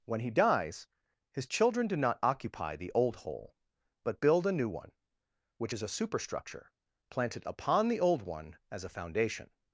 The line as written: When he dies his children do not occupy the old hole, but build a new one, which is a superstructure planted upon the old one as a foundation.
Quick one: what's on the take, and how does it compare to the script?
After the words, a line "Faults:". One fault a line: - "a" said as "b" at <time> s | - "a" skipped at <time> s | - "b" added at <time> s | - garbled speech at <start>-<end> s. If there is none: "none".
When he dies his children do not occupy the old hole, but build a new one, which is a superstructure planted upon the old one as a foundation.
Faults:
none